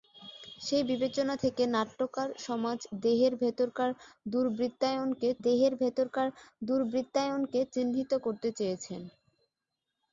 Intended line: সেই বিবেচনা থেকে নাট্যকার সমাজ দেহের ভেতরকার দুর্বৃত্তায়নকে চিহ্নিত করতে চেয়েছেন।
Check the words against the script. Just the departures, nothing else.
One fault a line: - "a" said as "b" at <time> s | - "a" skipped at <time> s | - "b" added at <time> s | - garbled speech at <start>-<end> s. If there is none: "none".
- "দেহের ভেতরকার দুর্বৃত্তায়নকে" added at 5.4 s